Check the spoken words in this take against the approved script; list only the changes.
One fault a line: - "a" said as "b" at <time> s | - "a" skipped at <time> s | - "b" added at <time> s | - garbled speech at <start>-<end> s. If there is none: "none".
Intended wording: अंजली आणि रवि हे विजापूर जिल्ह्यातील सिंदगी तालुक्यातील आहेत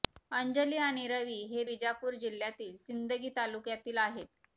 none